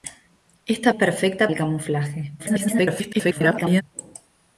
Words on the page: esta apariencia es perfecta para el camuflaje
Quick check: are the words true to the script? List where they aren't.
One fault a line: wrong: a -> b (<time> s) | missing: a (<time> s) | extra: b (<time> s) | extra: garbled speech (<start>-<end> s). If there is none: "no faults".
missing: apariencia (0.9 s)
missing: para (1.5 s)
extra: garbled speech (2.4-3.8 s)